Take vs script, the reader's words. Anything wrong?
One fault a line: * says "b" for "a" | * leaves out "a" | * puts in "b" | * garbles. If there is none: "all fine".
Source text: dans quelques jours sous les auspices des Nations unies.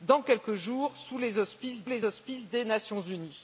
* puts in "les auspices"